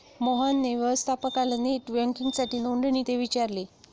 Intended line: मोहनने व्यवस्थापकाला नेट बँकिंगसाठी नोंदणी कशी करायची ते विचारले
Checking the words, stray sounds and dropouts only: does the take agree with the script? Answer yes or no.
no